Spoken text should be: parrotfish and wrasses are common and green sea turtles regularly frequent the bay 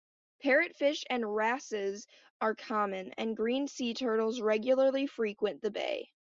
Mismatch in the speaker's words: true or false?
false